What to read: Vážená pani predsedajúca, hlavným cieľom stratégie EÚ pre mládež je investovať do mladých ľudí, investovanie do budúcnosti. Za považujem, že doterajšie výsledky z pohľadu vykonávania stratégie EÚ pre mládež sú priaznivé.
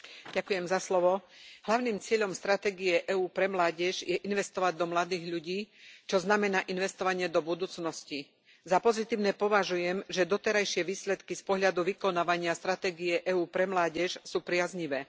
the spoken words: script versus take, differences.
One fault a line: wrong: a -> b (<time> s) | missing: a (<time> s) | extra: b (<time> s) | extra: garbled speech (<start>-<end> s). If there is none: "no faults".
extra: čo znamená (6.0 s)
extra: pozitívne (8.8 s)